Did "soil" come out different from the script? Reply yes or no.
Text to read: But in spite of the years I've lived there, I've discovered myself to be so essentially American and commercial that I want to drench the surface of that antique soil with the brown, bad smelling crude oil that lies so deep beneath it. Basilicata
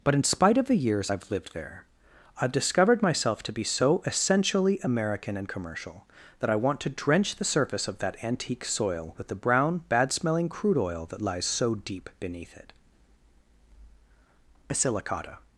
no